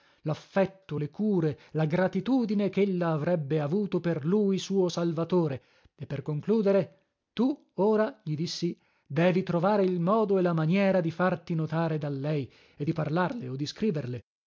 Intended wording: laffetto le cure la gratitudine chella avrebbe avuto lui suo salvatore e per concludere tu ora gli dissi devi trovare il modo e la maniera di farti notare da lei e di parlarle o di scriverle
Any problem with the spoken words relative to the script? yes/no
yes